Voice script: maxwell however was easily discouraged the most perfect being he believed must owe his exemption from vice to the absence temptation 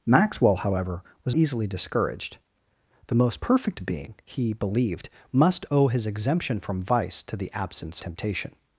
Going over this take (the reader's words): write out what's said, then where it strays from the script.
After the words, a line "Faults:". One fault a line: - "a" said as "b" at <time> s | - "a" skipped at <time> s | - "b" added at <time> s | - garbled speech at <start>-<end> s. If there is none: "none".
maxwell however was easily discouraged the most perfect being he believed must owe his exemption from vice to the absence temptation
Faults:
none